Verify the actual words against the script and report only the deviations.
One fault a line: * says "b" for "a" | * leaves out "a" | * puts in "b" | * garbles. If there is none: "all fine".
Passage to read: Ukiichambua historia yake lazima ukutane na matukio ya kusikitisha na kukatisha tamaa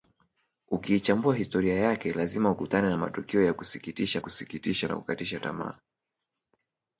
* puts in "kusikitisha"